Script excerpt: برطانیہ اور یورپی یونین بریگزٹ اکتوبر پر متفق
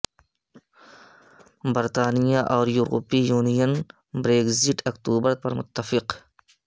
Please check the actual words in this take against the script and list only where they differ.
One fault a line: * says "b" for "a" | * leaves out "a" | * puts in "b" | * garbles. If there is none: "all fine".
all fine